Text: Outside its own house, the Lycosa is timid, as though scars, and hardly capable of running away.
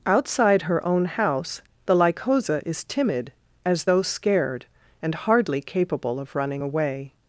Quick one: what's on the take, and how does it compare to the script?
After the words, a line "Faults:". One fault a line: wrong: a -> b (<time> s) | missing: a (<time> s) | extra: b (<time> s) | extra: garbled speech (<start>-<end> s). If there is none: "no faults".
Outside her own house, the Lycosa is timid, as though scared, and hardly capable of running away.
Faults:
wrong: its -> her (0.6 s)
wrong: scars -> scared (4.0 s)